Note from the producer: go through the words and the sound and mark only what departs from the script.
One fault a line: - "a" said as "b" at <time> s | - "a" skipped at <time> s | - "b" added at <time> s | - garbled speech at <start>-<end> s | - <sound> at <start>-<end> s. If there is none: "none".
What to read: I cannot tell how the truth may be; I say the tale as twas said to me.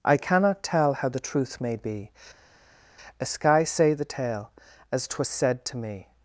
- "I" said as "a sky" at 3.2 s